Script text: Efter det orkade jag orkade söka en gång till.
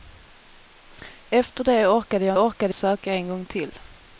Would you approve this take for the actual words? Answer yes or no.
yes